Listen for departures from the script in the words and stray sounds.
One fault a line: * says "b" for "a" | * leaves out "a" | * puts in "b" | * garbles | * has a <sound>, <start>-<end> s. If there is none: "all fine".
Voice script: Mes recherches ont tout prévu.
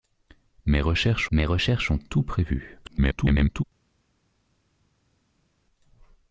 * puts in "mes recherches"
* garbles